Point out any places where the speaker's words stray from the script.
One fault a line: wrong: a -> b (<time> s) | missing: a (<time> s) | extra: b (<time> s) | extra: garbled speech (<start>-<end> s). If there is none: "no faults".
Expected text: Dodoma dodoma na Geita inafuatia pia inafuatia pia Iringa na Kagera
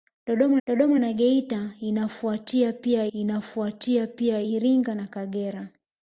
no faults